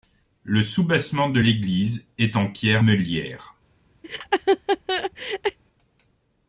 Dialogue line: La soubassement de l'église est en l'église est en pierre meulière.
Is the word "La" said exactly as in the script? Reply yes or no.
no